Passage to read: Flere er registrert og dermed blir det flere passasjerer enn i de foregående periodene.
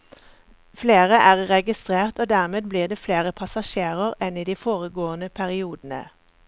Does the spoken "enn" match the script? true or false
true